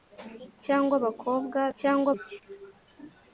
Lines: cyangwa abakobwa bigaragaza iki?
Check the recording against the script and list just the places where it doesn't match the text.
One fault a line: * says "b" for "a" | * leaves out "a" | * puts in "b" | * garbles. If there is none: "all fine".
* says "cyangwa" for "bigaragaza"